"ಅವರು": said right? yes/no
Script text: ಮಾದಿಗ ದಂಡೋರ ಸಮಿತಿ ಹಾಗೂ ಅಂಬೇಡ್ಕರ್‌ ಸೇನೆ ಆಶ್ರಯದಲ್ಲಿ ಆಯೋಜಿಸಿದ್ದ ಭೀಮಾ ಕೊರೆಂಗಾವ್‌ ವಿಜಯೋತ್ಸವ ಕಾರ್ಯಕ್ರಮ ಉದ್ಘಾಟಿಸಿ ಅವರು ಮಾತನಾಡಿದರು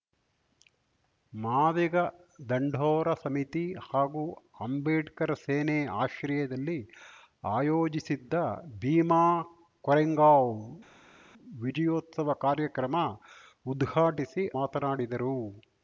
no